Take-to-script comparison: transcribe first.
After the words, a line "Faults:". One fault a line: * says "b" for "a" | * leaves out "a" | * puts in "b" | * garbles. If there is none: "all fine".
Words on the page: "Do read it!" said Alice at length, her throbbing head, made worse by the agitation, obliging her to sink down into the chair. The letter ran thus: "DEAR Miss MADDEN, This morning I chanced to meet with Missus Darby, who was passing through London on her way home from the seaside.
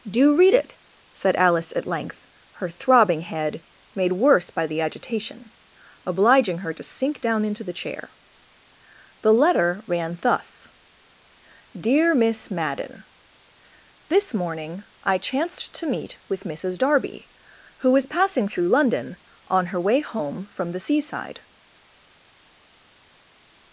"Do read it!" said Alice at length, her throbbing head, made worse by the agitation, obliging her to sink down into the chair. The letter ran thus: "DEAR Miss MADDEN, This morning I chanced to meet with Missus Darby, who was passing through London on her way home from the seaside.
Faults:
all fine